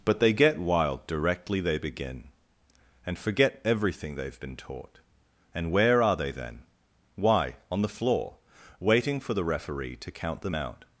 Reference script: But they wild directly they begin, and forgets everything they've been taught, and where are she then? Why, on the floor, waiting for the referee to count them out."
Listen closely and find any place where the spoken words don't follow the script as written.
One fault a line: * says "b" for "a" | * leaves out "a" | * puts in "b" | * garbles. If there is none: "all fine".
* puts in "get"
* says "forget" for "forgets"
* says "they" for "she"